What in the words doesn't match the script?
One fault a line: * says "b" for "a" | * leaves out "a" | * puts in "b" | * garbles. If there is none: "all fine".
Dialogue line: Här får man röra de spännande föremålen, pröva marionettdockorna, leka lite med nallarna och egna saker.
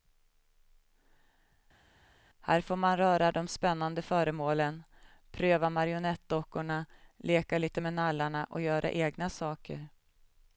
* puts in "göra"